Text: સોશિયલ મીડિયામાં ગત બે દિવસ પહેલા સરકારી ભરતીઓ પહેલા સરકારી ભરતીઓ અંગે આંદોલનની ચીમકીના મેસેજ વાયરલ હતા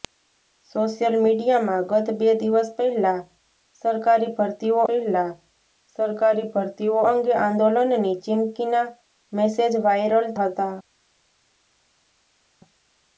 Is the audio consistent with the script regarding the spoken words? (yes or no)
yes